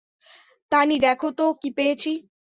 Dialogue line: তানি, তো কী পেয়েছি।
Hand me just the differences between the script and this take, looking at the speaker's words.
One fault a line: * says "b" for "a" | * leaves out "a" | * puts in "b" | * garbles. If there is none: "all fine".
* puts in "দেখো"